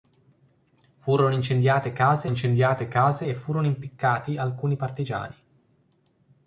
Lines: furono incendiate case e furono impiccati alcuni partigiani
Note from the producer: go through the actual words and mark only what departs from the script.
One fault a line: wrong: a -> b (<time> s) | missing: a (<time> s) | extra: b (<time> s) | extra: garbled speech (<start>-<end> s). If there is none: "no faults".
extra: incendiate case (2.3 s)